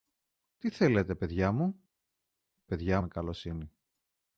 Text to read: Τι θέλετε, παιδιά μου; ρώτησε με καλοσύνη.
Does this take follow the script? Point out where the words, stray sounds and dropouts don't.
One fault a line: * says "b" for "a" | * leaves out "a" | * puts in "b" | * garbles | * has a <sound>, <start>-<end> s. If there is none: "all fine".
* says "παιδιά" for "ρώτησε"